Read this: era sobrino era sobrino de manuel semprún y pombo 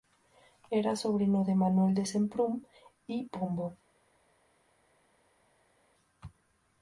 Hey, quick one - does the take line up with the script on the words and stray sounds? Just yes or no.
no